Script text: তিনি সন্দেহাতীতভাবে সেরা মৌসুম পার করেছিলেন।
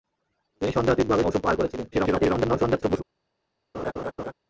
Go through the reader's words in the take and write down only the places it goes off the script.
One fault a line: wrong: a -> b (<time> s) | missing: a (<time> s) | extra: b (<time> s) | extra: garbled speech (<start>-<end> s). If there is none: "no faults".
missing: সেরা (1.2 s)
extra: garbled speech (1.9-3.0 s)